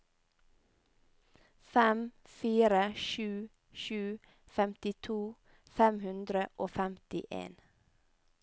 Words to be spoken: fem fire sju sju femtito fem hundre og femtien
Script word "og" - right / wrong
right